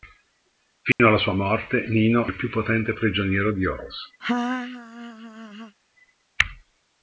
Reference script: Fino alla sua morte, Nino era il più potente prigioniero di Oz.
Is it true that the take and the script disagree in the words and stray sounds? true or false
true